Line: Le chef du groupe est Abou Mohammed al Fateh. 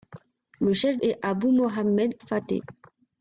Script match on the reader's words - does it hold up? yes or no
no